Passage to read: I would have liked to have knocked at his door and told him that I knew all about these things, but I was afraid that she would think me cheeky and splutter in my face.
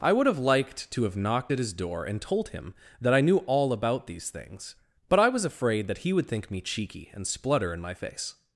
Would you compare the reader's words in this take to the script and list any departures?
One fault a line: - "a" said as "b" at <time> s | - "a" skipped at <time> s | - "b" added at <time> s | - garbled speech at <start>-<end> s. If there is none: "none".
- "she" said as "he" at 6.0 s